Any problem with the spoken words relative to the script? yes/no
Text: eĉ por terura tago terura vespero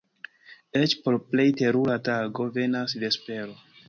yes